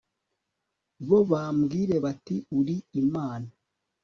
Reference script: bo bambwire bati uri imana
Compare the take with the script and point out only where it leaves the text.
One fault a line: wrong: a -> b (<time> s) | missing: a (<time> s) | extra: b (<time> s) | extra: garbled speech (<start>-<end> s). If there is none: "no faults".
no faults